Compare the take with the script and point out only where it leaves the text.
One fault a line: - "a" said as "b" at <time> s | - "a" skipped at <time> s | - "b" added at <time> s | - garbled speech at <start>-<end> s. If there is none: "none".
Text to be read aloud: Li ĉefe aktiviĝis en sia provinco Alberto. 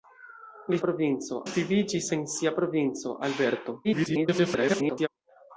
- "ĉefe" said as "provinco" at 0.8 s
- garbled speech at 3.8-5.1 s